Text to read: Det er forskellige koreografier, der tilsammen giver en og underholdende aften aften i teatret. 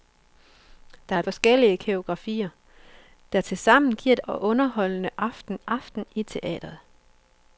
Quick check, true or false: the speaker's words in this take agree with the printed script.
true